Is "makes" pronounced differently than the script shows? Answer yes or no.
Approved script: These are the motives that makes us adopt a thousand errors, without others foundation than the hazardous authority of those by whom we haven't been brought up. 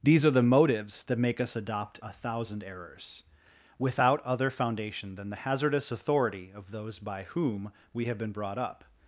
yes